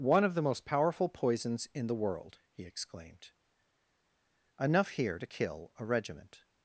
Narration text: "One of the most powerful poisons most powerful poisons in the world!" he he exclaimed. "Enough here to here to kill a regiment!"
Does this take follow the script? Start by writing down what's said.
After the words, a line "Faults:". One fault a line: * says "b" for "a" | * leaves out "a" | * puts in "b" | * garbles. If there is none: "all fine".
"One of the most powerful poisons in the world!" he exclaimed. "Enough here to kill a regiment!"
Faults:
* leaves out "most powerful poisons"
* leaves out "he"
* leaves out "here to"